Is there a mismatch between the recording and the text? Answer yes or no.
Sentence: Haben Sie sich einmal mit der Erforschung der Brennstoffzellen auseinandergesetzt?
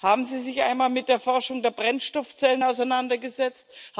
no